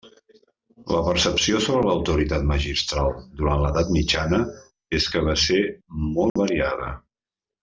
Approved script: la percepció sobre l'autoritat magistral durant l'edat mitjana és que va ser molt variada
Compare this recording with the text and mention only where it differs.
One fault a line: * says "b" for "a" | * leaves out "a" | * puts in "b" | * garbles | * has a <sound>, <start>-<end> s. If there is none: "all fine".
* has a dropout, 6.3-6.4 s